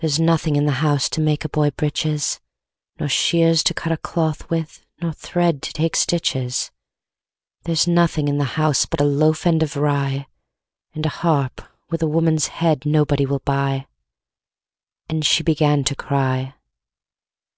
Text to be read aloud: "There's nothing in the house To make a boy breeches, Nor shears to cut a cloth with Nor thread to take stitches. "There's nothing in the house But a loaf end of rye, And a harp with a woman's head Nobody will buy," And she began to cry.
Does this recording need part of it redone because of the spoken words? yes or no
no